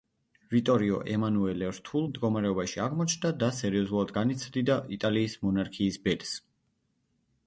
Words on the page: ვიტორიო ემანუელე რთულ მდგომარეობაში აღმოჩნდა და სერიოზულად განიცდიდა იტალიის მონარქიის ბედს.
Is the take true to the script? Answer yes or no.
yes